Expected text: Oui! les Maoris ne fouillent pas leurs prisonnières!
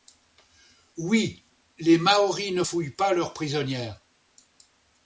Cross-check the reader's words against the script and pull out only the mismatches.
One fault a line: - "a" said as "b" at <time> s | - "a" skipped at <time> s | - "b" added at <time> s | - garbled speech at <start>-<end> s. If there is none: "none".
none